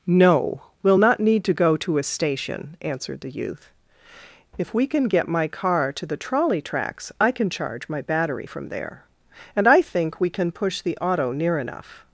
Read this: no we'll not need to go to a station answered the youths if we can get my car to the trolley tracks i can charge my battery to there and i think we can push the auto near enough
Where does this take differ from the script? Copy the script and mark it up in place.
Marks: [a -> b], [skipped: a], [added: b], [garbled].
no we'll not need to go to a station answered the [youths -> youth] if we can get my car to the trolley tracks i can charge my battery [to -> from] there and i think we can push the auto near enough